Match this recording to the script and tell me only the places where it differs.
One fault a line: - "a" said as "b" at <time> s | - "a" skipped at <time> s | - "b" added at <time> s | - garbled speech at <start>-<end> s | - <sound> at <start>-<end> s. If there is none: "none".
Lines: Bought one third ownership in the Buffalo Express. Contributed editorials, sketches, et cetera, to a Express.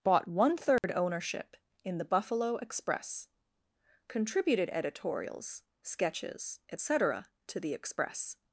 - dropout at 0.8-0.8 s
- "a" said as "the" at 7.6 s